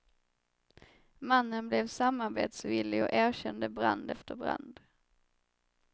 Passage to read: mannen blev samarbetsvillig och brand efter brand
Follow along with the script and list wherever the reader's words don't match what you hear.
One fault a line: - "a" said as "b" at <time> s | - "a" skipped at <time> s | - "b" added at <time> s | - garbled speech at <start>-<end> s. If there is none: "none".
- "erkände" added at 3.1 s